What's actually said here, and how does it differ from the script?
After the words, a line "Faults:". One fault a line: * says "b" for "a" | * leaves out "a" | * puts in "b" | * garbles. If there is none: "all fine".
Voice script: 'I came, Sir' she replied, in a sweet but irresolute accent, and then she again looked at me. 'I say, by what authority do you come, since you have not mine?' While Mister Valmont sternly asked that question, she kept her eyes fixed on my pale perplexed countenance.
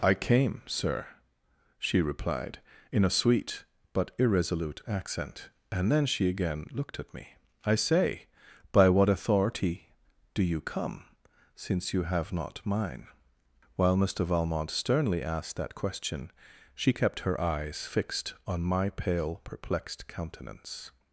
'I came, Sir' she replied, in a sweet but irresolute accent, and then she again looked at me. 'I say, by what authority do you come, since you have not mine?' While Mister Valmont sternly asked that question, she kept her eyes fixed on my pale perplexed countenance.
Faults:
all fine